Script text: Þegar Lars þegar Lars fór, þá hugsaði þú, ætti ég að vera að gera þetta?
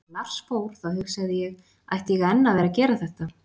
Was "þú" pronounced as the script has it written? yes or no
no